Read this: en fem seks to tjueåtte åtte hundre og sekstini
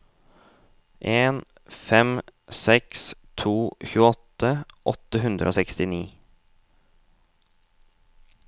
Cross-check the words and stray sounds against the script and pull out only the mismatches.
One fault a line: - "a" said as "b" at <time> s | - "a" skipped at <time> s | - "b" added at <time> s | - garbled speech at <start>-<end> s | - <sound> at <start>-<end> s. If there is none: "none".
none